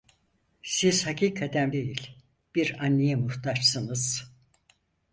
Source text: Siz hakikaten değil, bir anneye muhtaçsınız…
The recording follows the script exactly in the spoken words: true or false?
true